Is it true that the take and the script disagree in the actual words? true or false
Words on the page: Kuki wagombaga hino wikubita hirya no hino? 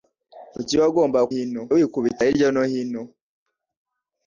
false